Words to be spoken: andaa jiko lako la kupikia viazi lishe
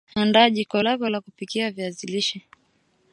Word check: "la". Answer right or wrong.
right